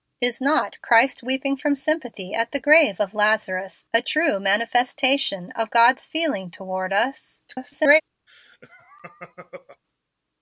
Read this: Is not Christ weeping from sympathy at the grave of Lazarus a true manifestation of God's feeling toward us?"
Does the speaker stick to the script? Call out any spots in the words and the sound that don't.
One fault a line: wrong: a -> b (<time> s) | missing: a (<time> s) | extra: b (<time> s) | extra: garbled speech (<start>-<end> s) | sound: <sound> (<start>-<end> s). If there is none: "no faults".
extra: garbled speech (7.5-8.0 s)
sound: laugh (8.3-9.8 s)